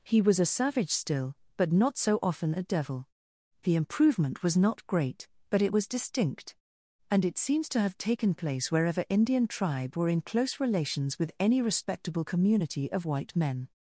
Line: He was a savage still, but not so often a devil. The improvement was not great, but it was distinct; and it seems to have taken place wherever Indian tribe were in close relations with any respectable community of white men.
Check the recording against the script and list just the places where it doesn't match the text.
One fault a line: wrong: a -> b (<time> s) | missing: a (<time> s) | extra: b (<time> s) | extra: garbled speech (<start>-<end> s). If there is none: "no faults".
no faults